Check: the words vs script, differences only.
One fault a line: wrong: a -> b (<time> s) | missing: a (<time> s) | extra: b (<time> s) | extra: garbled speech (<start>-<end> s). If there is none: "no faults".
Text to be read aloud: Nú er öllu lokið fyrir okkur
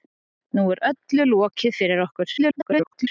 extra: garbled speech (2.4-3.1 s)